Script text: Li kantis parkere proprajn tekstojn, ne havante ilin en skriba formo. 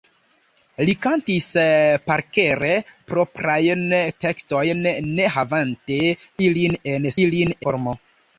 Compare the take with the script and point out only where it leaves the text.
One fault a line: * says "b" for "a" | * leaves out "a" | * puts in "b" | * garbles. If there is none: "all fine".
* says "ilin" for "skriba"